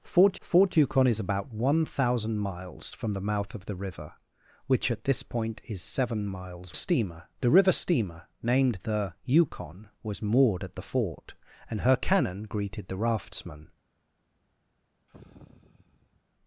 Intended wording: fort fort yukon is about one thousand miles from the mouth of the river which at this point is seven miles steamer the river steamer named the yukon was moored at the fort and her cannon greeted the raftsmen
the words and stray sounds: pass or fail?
fail